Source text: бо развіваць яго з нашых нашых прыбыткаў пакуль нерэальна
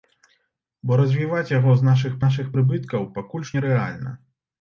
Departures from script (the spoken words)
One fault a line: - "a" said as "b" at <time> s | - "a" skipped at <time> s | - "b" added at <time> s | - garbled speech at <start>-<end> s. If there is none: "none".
none